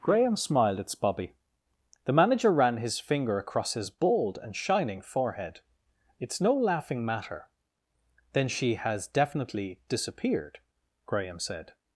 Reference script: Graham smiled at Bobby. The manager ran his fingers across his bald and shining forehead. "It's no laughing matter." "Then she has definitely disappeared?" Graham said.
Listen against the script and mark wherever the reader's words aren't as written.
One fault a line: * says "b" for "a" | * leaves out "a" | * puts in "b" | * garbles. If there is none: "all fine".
* says "finger" for "fingers"